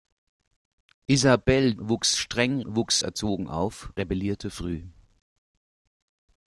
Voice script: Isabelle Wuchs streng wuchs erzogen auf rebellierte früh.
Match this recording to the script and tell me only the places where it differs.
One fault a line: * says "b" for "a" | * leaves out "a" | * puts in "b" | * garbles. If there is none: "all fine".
all fine